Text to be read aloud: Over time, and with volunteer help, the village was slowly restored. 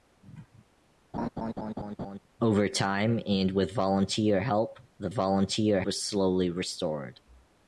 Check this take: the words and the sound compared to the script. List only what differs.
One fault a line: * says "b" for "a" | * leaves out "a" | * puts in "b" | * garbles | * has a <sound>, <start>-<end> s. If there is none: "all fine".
* has a laugh, 1.1-2.2 s
* says "volunteer" for "village"